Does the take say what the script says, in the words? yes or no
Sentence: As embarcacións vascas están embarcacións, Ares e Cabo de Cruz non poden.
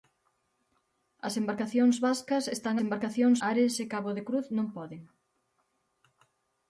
yes